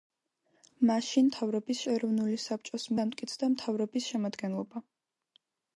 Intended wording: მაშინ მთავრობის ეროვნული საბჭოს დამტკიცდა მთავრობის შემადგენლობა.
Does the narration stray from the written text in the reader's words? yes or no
no